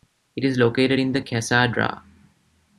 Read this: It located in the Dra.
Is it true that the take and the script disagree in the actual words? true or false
true